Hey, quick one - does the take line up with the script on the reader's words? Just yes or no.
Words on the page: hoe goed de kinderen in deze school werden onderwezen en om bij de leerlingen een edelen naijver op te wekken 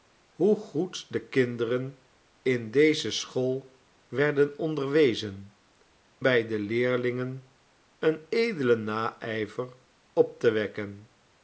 no